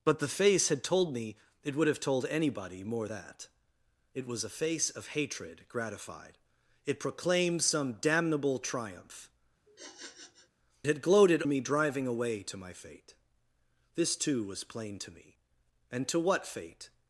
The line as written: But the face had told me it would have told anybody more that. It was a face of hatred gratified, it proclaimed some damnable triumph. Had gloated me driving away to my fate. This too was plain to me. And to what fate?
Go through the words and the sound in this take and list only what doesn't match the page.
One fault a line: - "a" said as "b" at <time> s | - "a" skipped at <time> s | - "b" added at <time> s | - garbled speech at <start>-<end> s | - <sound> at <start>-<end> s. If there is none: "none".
- sniff at 9.7-10.5 s